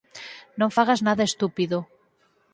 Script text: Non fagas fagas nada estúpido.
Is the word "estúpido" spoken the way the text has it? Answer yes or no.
yes